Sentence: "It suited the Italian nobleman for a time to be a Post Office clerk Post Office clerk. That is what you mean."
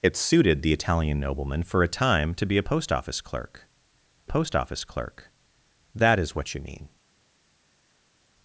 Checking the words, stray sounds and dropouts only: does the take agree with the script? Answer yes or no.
yes